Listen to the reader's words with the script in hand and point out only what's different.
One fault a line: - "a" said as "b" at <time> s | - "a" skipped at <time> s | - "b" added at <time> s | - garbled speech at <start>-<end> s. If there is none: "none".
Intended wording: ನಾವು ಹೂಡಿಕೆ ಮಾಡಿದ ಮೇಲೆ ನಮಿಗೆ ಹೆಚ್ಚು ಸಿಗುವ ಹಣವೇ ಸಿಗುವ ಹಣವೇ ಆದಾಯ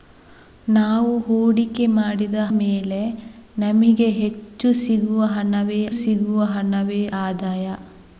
none